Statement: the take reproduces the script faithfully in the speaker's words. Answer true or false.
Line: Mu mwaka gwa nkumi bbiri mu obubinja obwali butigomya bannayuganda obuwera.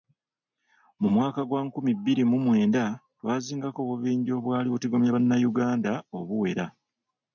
false